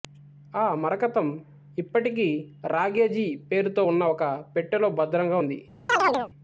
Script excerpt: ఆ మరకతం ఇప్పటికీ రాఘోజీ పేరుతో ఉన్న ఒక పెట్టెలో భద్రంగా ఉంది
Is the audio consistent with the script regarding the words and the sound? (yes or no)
no